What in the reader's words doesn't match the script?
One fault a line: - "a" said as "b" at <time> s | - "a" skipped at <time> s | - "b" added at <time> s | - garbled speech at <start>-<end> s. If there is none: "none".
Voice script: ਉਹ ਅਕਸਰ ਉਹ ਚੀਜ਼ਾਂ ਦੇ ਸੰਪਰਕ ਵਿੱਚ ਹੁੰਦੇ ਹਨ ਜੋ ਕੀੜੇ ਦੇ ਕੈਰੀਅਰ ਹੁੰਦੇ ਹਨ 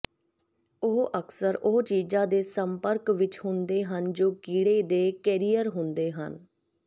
none